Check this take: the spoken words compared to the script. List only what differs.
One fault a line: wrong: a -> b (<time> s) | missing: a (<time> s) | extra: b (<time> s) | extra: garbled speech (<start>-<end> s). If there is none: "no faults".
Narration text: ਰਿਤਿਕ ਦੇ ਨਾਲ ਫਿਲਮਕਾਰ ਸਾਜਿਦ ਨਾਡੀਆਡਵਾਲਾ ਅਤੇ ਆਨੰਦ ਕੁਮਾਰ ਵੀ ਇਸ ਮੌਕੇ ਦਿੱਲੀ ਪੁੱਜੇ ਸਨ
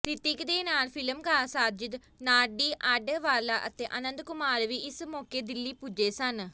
no faults